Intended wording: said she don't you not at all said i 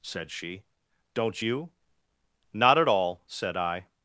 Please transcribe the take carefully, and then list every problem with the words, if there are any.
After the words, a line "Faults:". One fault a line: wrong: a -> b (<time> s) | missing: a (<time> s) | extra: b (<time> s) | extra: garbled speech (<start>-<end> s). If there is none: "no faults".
said she don't you not at all said i
Faults:
no faults